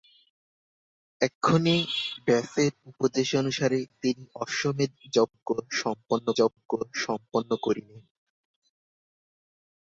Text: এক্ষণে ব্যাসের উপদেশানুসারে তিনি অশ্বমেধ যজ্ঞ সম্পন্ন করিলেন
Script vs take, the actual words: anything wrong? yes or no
yes